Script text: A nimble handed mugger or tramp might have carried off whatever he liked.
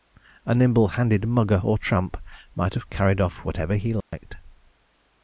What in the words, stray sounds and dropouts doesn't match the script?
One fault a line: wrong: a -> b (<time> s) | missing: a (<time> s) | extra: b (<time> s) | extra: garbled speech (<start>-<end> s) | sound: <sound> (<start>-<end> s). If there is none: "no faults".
sound: dropout (4.0-4.1 s)